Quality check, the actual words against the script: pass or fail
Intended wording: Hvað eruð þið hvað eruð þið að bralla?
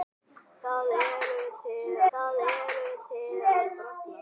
pass